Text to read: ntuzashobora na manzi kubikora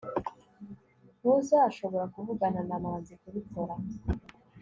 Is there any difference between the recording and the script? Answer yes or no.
yes